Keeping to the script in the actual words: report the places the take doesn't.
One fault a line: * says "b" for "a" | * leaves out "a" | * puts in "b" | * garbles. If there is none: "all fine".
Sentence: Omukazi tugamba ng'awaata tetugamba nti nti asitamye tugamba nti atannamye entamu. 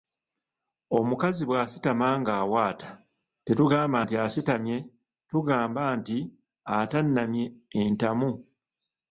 * says "bw'asitama" for "tugamba"
* leaves out "nti"